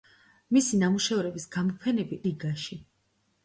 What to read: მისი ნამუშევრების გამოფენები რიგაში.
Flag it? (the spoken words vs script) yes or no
no